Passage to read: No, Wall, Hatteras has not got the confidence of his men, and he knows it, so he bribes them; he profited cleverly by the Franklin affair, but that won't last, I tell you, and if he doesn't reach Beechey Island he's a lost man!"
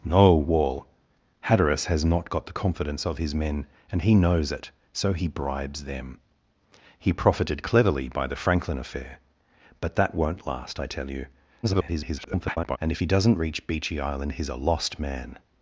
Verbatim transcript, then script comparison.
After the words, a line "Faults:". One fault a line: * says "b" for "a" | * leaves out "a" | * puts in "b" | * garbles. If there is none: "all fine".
No, Wall, Hatteras has not got the confidence of his men, and he knows it, so he bribes them; he profited cleverly by the Franklin affair, but that won't last, I tell you, [garbled] and if he doesn't reach Beechey Island he's a lost man!"
Faults:
* garbles